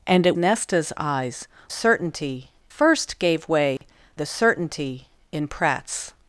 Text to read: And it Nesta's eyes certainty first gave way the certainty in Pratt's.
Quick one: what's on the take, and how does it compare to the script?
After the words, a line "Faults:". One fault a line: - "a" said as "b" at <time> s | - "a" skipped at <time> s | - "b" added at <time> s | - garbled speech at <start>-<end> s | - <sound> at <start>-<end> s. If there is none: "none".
And it Nesta's eyes certainty first gave way the certainty in Pratt's.
Faults:
- dropout at 3.8-3.8 s